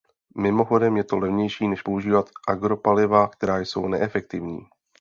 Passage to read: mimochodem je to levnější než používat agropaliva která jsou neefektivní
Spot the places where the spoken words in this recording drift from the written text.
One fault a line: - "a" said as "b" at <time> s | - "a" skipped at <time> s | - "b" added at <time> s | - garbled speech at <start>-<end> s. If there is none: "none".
none